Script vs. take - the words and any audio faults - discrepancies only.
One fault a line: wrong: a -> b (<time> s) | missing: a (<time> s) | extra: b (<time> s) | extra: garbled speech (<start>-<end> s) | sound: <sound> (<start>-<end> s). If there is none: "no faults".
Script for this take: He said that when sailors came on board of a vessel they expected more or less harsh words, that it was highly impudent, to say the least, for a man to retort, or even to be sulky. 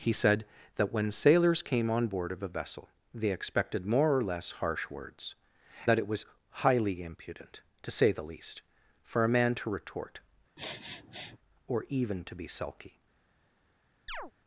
sound: sniff (10.6-11.4 s)
sound: chirp (14.1-14.3 s)